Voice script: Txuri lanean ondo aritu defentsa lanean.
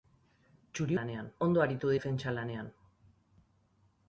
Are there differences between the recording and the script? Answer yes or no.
no